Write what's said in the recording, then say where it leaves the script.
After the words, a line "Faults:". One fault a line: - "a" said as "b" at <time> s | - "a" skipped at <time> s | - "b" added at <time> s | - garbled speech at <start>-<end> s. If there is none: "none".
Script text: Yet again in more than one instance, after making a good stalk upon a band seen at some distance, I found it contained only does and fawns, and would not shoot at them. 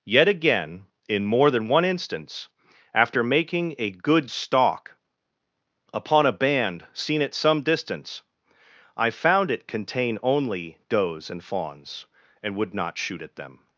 Yet again in more than one instance, after making a good stalk upon a band seen at some distance, I found it contain only does and fawns, and would not shoot at them.
Faults:
- "contained" said as "contain" at 9.7 s